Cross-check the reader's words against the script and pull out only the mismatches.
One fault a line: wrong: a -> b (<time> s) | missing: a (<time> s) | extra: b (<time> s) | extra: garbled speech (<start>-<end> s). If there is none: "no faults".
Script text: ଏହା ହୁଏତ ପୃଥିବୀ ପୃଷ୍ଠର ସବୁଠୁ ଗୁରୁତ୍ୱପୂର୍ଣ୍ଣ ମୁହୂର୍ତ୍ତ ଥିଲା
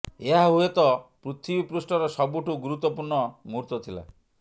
no faults